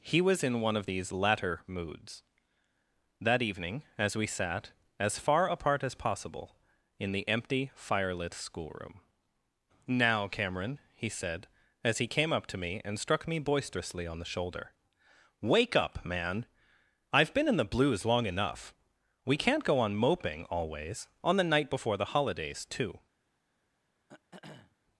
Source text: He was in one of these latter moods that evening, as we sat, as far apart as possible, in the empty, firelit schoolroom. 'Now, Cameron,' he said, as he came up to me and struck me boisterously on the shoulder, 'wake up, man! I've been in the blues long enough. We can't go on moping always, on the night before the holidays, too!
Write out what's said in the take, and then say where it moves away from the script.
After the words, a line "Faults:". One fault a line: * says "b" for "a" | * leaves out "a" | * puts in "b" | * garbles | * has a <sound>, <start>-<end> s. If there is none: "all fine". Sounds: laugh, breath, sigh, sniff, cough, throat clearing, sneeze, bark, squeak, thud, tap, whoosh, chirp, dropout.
He was in one of these latter moods that evening, as we sat, as far apart as possible, in the empty, firelit schoolroom. 'Now, Cameron,' he said, as he came up to me and struck me boisterously on the shoulder, 'wake up, man! I've been in the blues long enough. We can't go on moping always, on the night before the holidays, too!
Faults:
* has a throat clearing, 24.1-24.8 s